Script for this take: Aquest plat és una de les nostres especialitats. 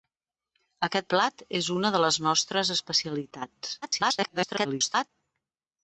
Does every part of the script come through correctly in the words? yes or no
no